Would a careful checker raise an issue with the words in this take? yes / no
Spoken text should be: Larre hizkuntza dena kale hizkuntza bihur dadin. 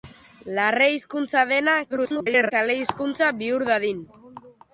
yes